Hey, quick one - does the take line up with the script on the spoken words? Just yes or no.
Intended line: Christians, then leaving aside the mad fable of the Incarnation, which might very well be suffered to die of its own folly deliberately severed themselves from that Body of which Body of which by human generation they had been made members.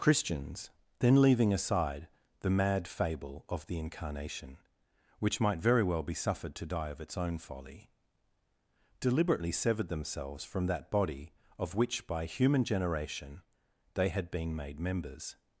no